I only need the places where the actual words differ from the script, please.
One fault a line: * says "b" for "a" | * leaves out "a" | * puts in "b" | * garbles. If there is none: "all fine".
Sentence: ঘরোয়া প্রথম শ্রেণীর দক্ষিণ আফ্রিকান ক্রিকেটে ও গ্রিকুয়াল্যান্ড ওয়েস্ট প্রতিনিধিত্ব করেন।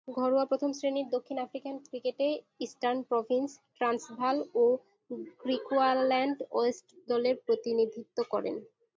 * puts in "ইস্টার্ন প্রভিন্স ট্রান্সভাল"
* puts in "দলের"